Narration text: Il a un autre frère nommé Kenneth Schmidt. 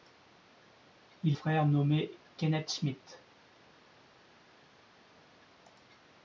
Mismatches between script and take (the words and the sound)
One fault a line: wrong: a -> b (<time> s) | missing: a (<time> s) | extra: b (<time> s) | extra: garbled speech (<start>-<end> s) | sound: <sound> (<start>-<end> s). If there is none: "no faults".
missing: a un autre (1.4 s)